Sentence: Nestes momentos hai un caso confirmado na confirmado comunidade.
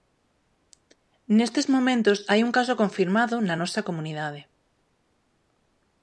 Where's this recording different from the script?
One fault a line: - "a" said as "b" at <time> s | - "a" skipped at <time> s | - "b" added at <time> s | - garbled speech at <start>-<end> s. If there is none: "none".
- "confirmado" said as "nosa" at 3.6 s